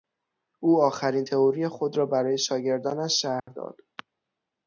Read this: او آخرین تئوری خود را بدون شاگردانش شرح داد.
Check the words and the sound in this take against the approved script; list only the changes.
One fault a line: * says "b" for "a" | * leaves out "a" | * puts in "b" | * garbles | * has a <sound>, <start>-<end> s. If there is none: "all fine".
* says "برای" for "بدون"
* has a dropout, 3.4-3.5 s